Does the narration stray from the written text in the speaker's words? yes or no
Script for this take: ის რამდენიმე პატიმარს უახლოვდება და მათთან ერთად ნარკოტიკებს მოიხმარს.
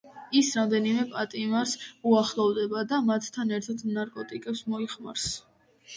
no